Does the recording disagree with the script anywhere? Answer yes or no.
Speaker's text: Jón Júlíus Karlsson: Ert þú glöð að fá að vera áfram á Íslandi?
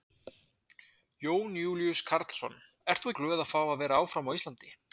no